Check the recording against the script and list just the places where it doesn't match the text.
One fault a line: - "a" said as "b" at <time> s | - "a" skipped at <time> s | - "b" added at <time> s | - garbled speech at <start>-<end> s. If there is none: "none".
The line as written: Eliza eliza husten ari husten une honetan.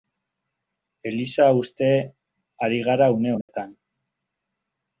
- "eliza" skipped at 1.5 s
- "husten" said as "gara" at 2.9 s